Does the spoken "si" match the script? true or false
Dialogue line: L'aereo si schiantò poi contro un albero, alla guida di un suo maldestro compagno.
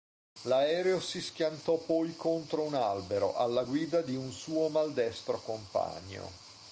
true